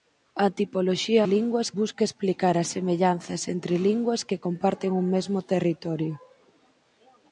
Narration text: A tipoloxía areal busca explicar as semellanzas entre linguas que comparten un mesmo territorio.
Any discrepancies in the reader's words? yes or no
yes